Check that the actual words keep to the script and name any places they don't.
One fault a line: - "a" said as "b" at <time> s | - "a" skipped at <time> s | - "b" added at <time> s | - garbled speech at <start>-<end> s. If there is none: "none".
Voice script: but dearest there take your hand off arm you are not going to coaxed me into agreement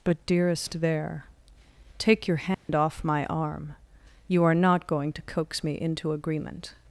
- "my" added at 3.0 s
- "coaxed" said as "coax" at 5.2 s